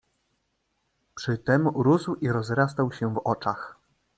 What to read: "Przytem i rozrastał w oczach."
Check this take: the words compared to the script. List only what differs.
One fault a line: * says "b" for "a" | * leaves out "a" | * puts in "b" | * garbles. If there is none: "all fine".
* puts in "rósł"
* puts in "się"